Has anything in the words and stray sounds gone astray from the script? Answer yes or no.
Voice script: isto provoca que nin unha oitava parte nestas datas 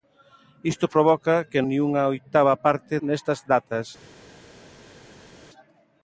no